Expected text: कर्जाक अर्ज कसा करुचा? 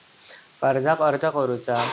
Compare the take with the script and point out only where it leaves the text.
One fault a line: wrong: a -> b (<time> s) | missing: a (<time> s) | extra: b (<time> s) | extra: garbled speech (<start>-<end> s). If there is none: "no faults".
missing: कसा (1.2 s)